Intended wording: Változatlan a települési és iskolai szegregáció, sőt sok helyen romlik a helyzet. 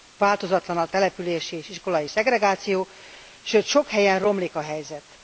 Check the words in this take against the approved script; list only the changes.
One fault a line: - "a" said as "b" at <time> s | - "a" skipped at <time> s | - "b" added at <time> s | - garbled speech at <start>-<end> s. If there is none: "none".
none